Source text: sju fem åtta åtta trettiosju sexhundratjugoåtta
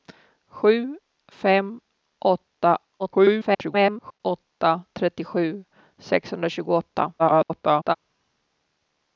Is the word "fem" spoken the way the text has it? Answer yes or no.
yes